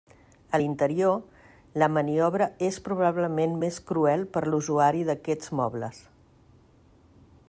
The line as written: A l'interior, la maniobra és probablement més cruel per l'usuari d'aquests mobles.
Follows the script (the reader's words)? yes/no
yes